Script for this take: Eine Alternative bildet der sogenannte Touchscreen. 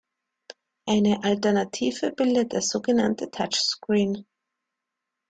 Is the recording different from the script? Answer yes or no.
no